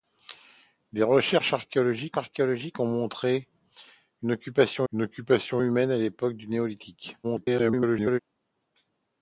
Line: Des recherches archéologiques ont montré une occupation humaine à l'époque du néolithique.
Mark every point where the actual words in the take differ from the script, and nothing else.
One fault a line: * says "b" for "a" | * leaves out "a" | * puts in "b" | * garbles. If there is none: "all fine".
* puts in "archéologiques"
* puts in "une occupation"
* garbles